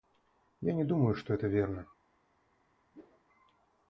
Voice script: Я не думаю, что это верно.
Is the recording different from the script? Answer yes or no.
no